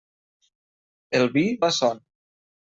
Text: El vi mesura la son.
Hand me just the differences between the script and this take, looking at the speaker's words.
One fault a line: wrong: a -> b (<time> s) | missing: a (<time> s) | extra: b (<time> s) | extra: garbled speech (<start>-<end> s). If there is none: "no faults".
missing: mesura (1.4 s)